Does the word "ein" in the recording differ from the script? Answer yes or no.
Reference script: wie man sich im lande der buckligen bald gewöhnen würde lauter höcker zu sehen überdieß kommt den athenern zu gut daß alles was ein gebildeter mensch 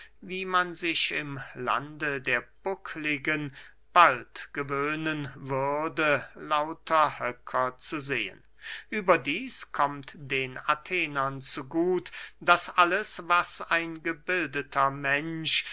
no